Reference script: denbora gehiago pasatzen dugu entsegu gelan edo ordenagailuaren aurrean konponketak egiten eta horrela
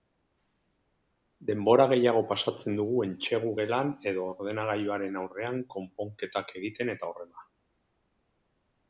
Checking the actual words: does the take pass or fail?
pass